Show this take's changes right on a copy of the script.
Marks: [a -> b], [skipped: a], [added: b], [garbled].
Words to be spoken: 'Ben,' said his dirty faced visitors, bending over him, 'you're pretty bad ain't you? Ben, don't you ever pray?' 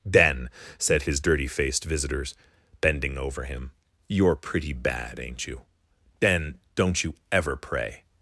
'Ben,' said his dirty faced visitors, bending over him, 'you're pretty bad ain't you? Ben, don't you ever pray?'